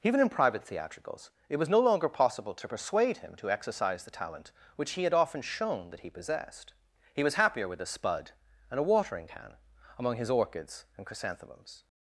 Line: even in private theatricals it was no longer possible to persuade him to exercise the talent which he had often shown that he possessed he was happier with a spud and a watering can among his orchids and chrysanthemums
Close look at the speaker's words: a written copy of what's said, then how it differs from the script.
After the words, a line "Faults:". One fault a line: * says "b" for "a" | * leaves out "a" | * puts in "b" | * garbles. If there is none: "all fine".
even in private theatricals it was no longer possible to persuade him to exercise the talent which he had often shown that he possessed he was happier with a spud and a watering can among his orchids and chrysanthemums
Faults:
all fine